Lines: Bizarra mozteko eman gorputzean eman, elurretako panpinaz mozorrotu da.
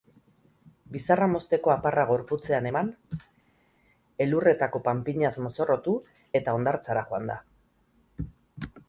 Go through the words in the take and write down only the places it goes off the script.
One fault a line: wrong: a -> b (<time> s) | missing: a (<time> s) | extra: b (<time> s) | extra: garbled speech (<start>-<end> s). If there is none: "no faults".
wrong: eman -> aparra (1.7 s)
extra: eta hondartzara joan (6.4 s)